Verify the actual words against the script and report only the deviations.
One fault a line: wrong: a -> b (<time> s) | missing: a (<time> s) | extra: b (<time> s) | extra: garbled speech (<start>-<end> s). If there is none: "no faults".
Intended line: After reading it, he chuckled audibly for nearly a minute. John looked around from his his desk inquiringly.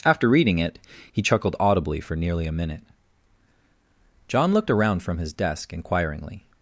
missing: his (5.3 s)